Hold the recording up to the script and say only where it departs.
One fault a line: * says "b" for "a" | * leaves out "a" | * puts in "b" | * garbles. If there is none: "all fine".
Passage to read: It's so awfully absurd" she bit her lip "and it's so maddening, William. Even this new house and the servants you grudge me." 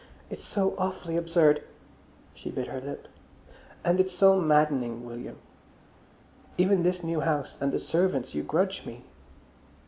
all fine